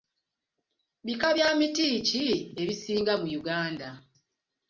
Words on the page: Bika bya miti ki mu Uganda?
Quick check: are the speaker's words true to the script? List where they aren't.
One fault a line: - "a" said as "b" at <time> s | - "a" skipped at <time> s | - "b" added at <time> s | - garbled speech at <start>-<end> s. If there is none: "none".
- "ebisinga" added at 2.6 s